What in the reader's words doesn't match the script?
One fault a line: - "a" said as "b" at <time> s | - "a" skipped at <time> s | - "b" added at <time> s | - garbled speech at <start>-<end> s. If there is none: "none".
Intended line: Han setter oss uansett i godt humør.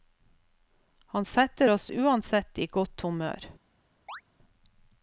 none